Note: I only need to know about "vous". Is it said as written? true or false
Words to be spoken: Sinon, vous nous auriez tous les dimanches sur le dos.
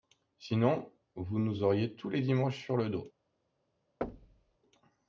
true